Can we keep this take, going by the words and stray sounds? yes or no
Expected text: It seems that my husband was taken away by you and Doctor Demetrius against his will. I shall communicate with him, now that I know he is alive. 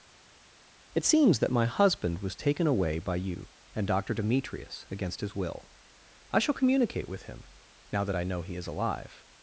yes